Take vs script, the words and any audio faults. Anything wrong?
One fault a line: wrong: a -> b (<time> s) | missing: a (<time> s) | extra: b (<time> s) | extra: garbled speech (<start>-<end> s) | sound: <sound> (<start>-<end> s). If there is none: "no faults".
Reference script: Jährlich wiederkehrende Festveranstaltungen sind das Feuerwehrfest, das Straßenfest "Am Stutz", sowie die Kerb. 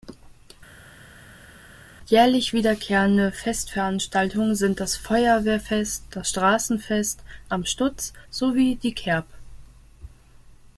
no faults